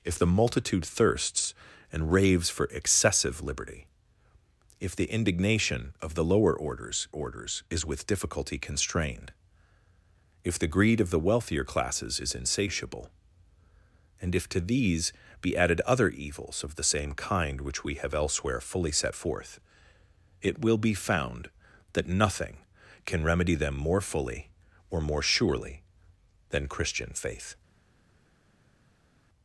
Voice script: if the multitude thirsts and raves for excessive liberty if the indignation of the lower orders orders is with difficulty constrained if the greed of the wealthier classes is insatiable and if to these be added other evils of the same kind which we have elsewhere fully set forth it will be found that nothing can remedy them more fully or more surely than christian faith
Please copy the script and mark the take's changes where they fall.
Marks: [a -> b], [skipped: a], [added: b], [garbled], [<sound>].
if the multitude thirsts and raves for excessive liberty if the indignation of the lower orders orders is with difficulty constrained if the greed of the wealthier classes is insatiable and if to these be added other evils of the same kind which we have elsewhere fully set forth it will be found that nothing can remedy them more fully or more surely than christian faith